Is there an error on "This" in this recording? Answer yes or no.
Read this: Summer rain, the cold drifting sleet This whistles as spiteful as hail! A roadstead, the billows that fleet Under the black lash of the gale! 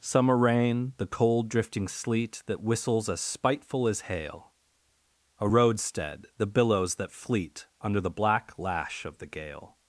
yes